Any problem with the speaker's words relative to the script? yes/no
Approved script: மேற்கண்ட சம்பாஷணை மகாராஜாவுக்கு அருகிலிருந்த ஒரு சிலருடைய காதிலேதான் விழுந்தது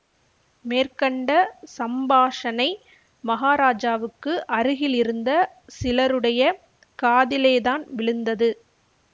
yes